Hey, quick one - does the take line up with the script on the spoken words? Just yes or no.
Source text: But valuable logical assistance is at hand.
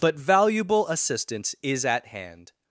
no